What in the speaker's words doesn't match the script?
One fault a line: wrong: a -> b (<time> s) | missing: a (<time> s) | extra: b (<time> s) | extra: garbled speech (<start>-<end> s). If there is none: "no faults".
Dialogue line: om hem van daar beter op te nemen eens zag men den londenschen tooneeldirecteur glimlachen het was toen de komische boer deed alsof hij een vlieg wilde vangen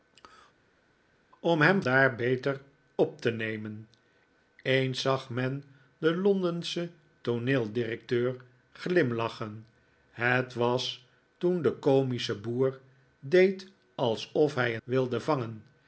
missing: van (1.8 s)
missing: een vlieg (14.8 s)